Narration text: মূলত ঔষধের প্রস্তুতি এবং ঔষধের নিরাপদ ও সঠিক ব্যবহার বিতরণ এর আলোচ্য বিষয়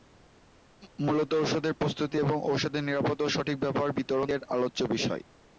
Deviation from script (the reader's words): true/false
false